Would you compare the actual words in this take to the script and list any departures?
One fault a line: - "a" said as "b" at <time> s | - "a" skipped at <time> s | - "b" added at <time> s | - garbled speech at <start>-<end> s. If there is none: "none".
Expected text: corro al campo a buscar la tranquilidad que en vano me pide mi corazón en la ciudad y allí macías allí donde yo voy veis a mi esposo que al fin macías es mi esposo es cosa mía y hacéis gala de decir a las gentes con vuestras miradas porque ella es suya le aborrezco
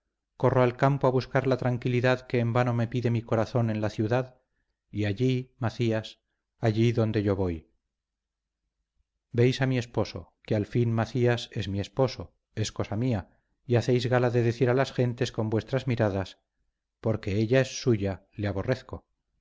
none